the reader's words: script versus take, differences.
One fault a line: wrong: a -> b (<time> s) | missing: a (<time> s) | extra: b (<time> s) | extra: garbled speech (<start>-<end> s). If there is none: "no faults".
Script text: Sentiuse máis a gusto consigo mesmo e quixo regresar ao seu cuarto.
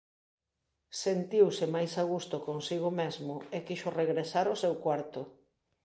no faults